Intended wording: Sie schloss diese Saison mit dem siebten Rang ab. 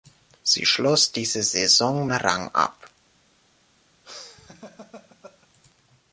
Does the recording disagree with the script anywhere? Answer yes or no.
yes